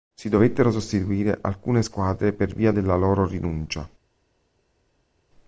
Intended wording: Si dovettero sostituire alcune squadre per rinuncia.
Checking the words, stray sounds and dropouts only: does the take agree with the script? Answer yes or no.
no